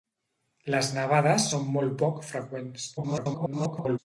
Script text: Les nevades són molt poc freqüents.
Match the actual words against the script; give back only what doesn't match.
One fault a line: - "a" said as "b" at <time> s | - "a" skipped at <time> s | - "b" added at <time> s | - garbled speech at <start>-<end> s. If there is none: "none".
- garbled speech at 3.0-4.0 s